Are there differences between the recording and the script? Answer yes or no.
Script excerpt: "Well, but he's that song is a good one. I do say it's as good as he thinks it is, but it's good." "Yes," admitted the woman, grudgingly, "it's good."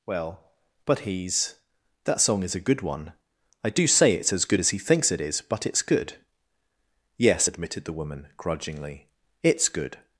no